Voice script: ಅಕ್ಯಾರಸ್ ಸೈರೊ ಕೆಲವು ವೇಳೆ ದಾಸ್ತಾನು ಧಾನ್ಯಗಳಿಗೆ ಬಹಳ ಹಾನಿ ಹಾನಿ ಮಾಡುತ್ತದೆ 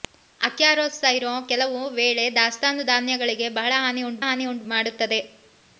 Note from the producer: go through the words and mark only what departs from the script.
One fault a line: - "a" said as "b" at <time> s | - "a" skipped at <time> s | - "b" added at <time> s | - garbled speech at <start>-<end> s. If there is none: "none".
none